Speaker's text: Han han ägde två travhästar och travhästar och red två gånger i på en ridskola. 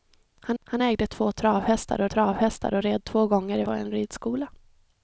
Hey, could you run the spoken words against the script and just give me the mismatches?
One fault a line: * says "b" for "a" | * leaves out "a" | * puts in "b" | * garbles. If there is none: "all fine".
all fine